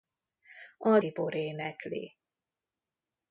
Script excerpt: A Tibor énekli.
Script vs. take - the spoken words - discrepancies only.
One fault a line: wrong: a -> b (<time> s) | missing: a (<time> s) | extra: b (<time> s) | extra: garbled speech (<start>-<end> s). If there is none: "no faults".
no faults